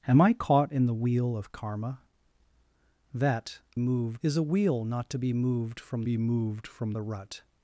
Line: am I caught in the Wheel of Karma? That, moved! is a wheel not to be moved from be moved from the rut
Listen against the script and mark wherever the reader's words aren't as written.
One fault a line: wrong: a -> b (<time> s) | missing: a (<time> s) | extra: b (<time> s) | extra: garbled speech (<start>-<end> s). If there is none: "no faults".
no faults